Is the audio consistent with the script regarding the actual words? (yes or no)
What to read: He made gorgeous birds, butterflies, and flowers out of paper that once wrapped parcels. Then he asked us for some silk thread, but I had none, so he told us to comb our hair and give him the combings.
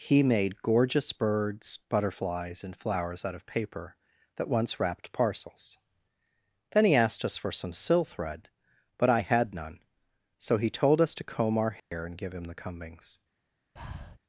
no